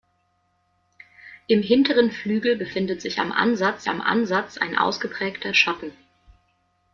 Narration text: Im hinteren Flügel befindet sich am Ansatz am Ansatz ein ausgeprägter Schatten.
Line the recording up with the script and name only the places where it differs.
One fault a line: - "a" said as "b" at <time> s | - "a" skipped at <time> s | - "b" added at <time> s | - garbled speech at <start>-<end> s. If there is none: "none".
none